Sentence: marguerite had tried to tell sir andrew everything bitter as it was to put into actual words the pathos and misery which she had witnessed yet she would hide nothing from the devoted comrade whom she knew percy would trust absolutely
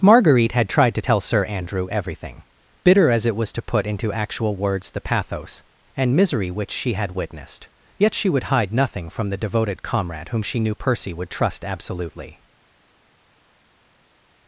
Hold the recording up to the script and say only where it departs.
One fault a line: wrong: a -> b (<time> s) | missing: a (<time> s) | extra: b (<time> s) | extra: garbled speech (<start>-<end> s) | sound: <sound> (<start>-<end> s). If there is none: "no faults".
no faults